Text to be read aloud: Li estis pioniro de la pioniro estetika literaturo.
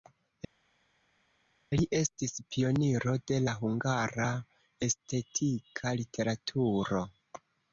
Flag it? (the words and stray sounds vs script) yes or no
yes